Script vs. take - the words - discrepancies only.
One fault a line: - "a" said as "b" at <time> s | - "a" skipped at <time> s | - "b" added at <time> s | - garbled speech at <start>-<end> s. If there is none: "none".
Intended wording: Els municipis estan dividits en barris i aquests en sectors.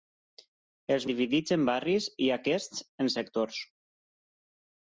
- "municipis estan" skipped at 1.1 s